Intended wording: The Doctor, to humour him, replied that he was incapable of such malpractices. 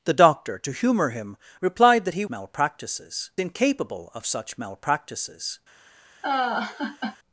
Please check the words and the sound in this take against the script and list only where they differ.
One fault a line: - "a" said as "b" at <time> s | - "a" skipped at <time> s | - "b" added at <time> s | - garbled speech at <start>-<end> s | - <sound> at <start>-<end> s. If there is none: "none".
- "was" said as "malpractices" at 2.3 s
- laugh at 6.2-7.2 s